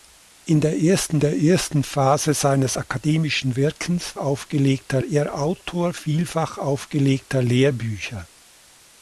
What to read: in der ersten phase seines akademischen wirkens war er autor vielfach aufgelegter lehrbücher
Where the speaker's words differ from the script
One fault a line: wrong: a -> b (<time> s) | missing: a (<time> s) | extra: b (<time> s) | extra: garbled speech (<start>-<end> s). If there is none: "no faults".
extra: der ersten (1.2 s)
wrong: war -> aufgelegter (4.2 s)